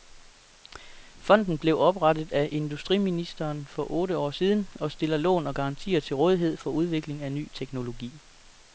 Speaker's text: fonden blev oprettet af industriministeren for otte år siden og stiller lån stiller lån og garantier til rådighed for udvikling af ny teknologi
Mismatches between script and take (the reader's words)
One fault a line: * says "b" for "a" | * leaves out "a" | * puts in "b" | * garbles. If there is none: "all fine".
* leaves out "stiller lån"